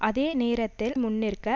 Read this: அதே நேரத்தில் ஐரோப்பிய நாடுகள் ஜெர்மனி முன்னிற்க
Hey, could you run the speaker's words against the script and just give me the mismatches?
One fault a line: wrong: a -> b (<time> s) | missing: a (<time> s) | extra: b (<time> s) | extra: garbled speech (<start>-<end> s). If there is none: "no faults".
missing: ஐரோப்பிய நாடுகள் ஜெர்மனி (0.9 s)